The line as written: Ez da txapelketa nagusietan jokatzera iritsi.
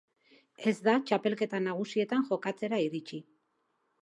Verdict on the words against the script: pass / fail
pass